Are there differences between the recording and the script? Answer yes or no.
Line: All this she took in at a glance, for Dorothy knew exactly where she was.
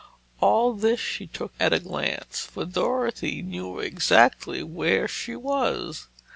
yes